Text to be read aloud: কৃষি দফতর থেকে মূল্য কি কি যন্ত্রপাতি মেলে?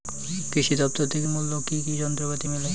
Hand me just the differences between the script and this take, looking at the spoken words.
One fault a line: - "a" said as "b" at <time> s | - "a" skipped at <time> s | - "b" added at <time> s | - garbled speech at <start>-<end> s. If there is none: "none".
none